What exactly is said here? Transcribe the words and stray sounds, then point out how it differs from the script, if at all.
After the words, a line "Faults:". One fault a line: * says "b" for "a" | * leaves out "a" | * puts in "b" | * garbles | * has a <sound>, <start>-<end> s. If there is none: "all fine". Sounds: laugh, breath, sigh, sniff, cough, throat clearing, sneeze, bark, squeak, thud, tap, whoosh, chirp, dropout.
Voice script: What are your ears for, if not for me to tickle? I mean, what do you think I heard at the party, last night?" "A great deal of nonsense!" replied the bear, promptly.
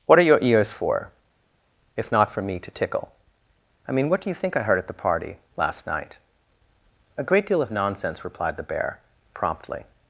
What are your ears for, if not for me to tickle? I mean, what do you think I heard at the party, last night?" "A great deal of nonsense!" replied the bear, promptly.
Faults:
all fine